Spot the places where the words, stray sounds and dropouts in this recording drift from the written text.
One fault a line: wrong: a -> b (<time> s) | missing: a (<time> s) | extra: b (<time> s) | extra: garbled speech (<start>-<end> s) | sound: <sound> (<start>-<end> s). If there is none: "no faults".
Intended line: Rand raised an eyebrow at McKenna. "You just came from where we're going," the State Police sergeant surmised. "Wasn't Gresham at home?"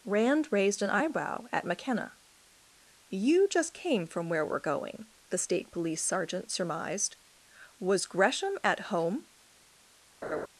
wrong: Wasn't -> Was (7.8 s)
sound: laugh (10.2-10.5 s)